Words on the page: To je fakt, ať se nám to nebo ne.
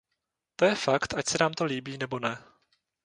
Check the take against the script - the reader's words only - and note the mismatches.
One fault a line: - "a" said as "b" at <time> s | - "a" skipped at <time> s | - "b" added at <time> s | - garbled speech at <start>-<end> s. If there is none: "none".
- "líbí" added at 1.6 s